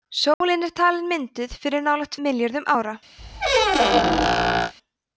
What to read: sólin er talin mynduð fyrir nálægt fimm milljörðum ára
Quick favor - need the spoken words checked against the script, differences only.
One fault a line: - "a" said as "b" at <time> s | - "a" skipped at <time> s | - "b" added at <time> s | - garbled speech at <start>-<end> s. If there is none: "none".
- "fimm" skipped at 2.2 s